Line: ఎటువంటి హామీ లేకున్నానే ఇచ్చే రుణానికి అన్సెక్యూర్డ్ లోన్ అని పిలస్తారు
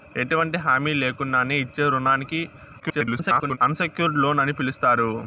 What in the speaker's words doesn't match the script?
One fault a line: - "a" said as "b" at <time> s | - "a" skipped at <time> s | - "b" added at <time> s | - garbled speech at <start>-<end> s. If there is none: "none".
- garbled speech at 2.8-3.6 s